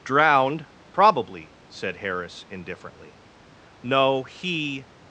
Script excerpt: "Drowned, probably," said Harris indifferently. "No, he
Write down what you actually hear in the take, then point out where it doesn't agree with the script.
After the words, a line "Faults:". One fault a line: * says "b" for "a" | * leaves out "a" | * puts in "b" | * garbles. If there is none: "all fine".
"Drowned, probably," said Harris indifferently. "No, he
Faults:
all fine